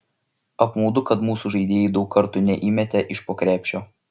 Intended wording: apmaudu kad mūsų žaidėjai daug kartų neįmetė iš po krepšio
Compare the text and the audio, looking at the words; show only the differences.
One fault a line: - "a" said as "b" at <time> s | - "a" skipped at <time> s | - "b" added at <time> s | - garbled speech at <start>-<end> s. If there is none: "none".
none